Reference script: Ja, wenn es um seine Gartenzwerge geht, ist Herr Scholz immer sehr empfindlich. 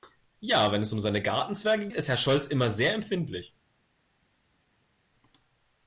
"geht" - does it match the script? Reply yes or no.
no